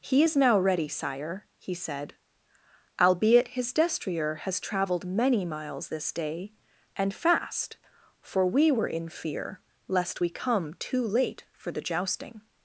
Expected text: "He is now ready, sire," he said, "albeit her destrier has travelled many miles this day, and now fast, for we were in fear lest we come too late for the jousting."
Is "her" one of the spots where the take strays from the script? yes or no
yes